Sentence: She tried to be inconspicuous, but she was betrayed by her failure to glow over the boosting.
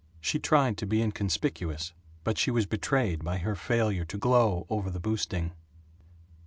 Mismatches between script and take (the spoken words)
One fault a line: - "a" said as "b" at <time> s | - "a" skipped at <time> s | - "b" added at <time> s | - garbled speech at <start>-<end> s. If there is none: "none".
none